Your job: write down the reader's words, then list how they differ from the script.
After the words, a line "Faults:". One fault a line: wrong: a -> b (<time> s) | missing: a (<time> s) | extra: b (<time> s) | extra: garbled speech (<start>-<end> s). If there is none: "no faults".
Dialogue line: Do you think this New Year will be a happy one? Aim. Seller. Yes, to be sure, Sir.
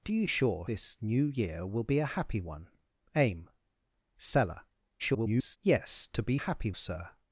Do you sure this New Year will be a happy one? Aim. Seller. [garbled] Yes, to be happy, Sir.
Faults:
wrong: think -> sure (0.3 s)
extra: garbled speech (5.0-5.6 s)
wrong: sure -> happy (6.3 s)